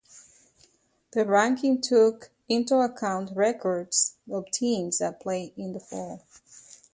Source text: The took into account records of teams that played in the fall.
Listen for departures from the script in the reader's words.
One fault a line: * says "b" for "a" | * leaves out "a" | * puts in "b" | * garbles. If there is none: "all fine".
* puts in "ranking"